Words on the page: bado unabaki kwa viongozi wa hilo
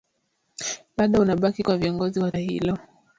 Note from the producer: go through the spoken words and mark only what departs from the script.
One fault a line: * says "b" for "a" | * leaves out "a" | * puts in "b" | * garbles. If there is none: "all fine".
all fine